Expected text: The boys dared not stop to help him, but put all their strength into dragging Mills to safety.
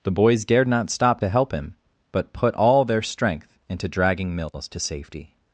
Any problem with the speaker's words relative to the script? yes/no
no